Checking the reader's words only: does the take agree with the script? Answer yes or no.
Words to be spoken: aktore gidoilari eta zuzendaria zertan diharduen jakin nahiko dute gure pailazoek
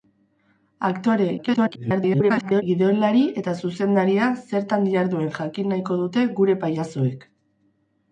no